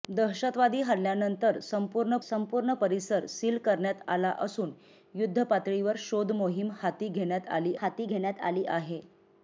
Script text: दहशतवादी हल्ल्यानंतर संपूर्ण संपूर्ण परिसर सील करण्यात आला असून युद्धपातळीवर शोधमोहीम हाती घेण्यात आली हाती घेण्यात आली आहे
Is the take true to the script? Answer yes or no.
yes